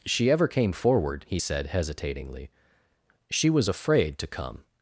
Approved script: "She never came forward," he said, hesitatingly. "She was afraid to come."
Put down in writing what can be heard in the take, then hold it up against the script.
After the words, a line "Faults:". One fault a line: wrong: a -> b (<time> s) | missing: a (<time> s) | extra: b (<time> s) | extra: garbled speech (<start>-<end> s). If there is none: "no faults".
"She ever came forward," he said, hesitatingly. "She was afraid to come."
Faults:
wrong: never -> ever (0.3 s)